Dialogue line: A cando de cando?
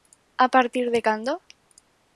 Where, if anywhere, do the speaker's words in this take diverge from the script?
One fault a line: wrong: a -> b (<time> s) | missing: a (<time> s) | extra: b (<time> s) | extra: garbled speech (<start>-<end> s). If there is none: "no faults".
wrong: cando -> partir (0.6 s)